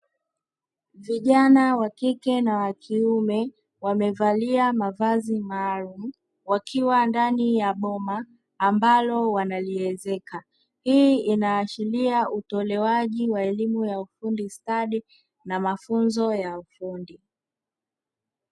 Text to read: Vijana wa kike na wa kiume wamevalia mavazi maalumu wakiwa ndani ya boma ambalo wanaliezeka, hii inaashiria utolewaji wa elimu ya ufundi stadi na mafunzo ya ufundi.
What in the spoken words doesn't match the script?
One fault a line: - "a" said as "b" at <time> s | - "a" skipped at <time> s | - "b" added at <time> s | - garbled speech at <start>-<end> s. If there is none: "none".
none